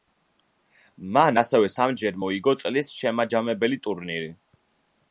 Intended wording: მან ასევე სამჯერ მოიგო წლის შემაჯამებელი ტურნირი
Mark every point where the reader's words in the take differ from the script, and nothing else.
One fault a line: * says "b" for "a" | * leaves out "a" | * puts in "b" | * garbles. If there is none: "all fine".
all fine